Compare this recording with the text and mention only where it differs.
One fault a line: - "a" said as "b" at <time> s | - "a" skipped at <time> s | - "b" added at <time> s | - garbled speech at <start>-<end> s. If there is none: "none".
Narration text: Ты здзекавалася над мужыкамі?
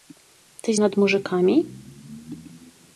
- "здзекавалася" skipped at 0.7 s